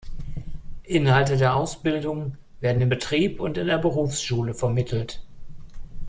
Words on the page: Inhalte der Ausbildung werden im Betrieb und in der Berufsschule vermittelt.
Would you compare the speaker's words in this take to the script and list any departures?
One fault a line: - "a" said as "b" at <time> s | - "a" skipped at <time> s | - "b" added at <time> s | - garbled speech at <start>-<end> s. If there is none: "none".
none